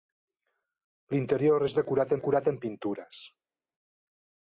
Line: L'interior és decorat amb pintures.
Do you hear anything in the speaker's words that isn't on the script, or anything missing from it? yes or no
yes